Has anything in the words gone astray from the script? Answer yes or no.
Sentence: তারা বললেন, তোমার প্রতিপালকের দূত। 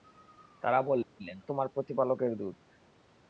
no